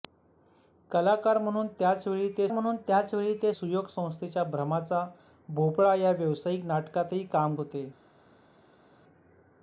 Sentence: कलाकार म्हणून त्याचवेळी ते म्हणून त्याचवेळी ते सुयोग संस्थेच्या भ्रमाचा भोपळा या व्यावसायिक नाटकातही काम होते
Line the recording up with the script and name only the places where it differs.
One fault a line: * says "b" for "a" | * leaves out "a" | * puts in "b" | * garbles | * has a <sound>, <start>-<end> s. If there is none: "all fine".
all fine